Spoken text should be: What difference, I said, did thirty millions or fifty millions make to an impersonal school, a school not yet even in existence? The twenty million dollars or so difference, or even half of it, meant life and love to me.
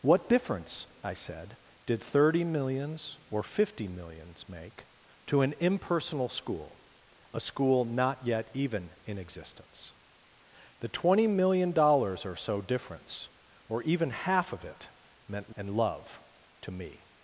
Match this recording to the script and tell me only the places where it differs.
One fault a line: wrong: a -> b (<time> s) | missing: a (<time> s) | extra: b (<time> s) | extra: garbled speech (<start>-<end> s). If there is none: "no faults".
missing: life (15.6 s)